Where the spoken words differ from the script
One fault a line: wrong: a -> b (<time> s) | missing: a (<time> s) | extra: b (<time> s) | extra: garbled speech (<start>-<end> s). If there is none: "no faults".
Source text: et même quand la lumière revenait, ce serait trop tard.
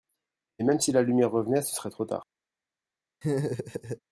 wrong: quand -> si (0.8 s)